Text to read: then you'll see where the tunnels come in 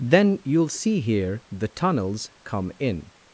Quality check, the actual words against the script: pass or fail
fail